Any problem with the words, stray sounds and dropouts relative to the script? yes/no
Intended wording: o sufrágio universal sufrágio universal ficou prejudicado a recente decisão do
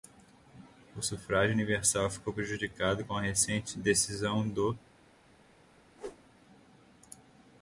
yes